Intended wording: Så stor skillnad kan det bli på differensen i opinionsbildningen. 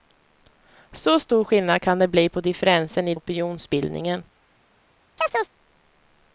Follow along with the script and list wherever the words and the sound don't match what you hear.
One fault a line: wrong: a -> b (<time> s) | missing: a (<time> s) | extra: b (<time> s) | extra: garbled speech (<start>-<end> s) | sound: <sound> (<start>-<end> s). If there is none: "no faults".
sound: chirp (5.2-5.5 s)